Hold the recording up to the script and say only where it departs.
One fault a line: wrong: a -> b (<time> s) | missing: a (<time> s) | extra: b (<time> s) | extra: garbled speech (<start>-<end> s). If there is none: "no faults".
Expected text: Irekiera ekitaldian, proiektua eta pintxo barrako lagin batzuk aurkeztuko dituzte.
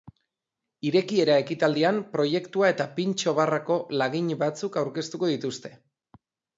no faults